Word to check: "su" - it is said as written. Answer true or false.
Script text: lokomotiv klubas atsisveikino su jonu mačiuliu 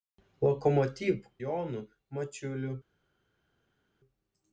false